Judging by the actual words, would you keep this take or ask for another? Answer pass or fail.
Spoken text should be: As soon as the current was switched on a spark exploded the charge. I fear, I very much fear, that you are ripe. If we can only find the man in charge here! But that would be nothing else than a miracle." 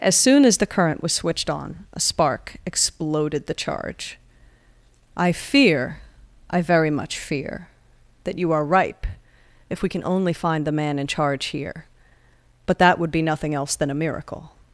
pass